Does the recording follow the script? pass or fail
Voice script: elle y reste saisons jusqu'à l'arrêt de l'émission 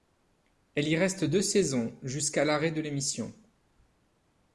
fail